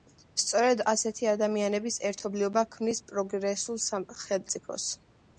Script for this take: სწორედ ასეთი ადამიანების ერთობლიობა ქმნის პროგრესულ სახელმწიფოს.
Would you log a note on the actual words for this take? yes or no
no